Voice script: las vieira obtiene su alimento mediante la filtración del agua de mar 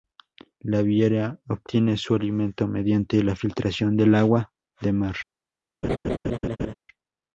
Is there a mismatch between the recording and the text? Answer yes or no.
yes